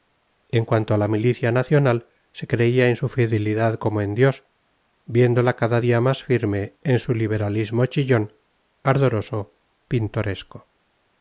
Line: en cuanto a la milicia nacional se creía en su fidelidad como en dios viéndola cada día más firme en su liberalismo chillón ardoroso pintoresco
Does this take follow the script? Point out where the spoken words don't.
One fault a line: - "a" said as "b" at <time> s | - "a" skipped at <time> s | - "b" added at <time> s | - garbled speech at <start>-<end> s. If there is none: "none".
none